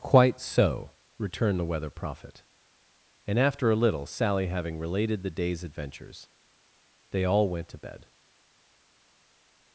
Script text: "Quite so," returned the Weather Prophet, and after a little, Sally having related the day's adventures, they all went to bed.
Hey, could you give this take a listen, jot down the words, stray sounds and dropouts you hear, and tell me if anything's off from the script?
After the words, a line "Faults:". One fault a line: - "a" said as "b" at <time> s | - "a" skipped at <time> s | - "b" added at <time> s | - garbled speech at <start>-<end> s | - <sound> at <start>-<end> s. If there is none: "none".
"Quite so," returned the Weather Prophet, and after a little, Sally having related the day's adventures, they all went to bed.
Faults:
none